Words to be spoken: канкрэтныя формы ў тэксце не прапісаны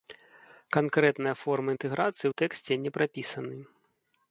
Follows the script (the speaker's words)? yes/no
no